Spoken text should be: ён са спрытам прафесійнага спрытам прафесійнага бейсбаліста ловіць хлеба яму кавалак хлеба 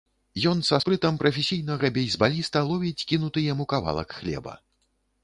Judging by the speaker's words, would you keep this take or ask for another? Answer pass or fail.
fail